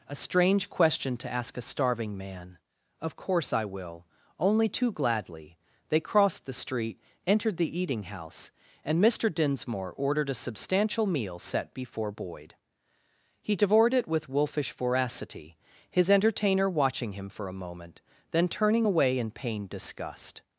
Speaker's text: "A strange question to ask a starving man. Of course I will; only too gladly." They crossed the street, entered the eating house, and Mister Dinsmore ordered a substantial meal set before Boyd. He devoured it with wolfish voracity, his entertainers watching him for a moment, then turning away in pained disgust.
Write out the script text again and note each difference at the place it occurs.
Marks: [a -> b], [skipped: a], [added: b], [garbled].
"A strange question to ask a starving man. Of course I will; only too gladly." They crossed the street, entered the eating house, and Mister Dinsmore ordered a substantial meal set before Boyd. He devoured it with wolfish voracity, his [entertainers -> entertainer] watching him for a moment, then turning away in pained disgust.